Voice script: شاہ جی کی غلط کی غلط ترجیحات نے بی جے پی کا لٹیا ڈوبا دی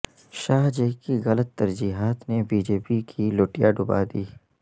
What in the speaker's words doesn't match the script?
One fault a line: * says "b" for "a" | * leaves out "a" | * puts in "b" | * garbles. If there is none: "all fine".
* leaves out "کی غلط"
* says "کی" for "کا"